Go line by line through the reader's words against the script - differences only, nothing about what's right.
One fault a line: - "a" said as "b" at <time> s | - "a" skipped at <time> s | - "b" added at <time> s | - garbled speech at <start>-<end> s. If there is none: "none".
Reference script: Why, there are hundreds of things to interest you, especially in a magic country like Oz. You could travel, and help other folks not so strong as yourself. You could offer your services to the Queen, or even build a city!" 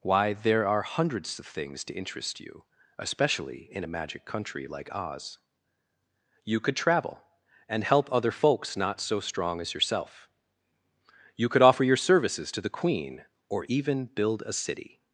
none